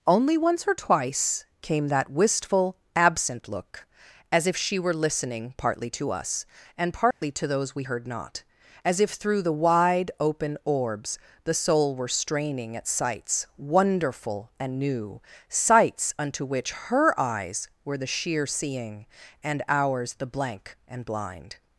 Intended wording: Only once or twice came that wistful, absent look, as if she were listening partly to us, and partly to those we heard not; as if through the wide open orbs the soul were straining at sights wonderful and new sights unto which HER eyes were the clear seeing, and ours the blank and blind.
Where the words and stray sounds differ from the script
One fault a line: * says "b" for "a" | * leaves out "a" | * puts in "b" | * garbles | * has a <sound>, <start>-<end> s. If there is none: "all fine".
* has a dropout, 7.1-7.2 s
* says "sheer" for "clear"